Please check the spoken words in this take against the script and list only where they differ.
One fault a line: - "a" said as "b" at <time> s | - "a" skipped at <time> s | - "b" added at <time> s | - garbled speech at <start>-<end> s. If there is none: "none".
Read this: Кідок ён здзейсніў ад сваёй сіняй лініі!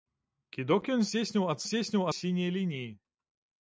- "сваёй" said as "здзейсніў" at 1.7 s